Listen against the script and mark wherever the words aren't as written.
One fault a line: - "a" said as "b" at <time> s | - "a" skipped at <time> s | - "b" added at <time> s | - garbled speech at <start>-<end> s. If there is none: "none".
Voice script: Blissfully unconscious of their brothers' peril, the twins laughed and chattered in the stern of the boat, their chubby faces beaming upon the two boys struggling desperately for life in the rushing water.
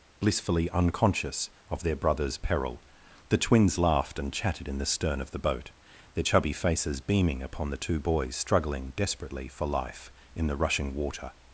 - "chattered" said as "chatted" at 4.3 s